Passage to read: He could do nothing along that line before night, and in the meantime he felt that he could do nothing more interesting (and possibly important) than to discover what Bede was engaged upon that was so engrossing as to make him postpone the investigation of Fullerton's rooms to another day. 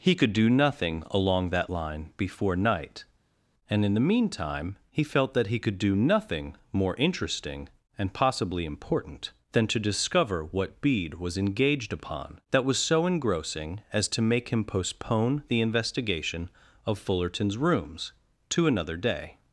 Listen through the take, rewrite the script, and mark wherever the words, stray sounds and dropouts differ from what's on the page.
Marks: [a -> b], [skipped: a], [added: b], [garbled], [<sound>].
He could do nothing along that line before night, and in the meantime he felt that he could do nothing more interesting (and possibly important) than to discover what Bede was engaged upon that was so engrossing as to make him postpone the investigation of Fullerton's rooms to another day.